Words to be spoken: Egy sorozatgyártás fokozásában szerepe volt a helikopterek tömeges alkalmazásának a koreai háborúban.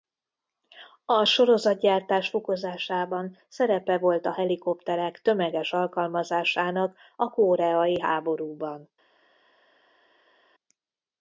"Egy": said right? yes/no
no